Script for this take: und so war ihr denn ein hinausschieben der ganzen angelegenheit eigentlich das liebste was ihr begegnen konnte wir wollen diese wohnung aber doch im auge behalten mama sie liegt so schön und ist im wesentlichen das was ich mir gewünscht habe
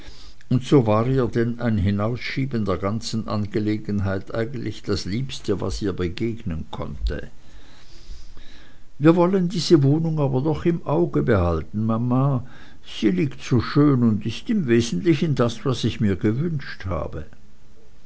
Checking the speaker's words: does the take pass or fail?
pass